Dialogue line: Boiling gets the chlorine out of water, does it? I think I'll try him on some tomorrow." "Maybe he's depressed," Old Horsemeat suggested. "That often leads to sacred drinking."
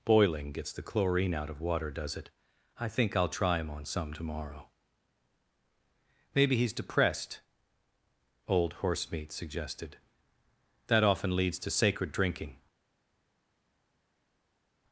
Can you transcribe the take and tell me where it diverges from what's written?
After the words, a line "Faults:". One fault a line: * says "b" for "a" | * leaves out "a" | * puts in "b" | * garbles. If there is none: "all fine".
Boiling gets the chlorine out of water, does it? I think I'll try him on some tomorrow." "Maybe he's depressed," Old Horsemeat suggested. "That often leads to sacred drinking."
Faults:
all fine